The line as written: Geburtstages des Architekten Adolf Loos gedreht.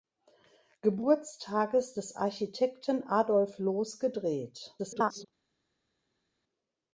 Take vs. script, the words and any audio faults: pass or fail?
fail